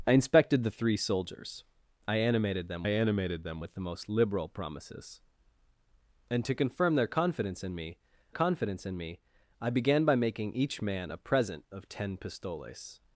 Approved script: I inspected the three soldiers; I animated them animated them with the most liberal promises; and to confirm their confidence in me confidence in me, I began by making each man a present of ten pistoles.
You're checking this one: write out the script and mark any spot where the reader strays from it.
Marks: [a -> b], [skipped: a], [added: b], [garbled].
I inspected the three soldiers; I animated them animated them with the most liberal promises; and to confirm their confidence in me confidence in me, I began by making each man a present of ten pistoles.